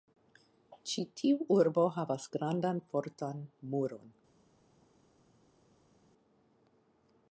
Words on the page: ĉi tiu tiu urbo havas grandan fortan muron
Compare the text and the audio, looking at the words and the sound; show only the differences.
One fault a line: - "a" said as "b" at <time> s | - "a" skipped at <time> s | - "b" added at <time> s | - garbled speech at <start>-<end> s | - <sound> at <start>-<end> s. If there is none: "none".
- "tiu" skipped at 1.4 s